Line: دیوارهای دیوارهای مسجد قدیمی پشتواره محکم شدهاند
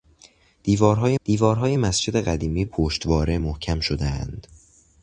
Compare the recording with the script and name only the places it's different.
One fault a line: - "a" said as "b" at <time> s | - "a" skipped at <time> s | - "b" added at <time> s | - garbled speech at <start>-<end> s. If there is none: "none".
none